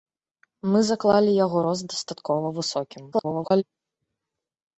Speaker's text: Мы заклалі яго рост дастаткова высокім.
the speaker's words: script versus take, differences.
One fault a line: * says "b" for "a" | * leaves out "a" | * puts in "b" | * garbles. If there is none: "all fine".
* garbles